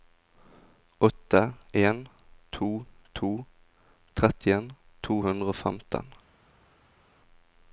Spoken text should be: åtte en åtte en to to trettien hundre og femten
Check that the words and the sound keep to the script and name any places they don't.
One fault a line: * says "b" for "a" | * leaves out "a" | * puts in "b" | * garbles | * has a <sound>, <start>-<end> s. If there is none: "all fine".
* leaves out "åtte en"
* puts in "to"